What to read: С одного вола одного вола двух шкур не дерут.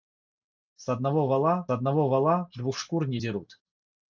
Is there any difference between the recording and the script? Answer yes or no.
no